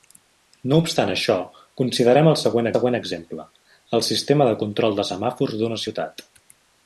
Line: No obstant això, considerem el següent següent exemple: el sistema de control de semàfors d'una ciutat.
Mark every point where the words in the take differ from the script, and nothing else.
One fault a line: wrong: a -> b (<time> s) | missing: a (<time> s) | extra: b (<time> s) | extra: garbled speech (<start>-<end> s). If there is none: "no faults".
no faults